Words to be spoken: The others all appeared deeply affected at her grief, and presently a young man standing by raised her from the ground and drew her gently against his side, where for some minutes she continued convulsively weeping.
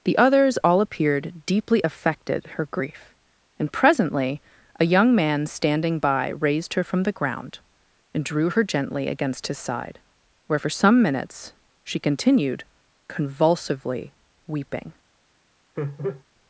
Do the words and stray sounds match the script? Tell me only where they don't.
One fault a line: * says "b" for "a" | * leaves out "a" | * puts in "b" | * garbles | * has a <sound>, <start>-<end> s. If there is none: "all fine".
* leaves out "at"
* has a laugh, 15.8-16.2 s